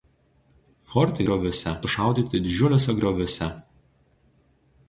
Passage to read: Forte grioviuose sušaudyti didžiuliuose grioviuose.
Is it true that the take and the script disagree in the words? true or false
false